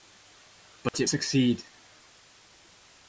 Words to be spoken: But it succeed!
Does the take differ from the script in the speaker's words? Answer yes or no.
no